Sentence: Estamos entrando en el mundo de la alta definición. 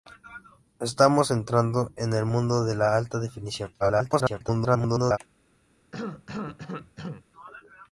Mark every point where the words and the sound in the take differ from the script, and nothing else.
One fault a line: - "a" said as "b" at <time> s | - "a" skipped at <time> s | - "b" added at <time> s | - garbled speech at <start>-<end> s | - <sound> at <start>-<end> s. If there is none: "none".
- garbled speech at 3.8-5.2 s
- cough at 5.9-7.3 s